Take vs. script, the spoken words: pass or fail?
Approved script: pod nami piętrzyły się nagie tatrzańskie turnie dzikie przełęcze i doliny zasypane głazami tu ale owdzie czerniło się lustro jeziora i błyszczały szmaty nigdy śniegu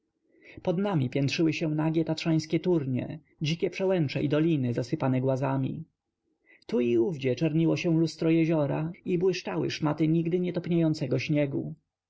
fail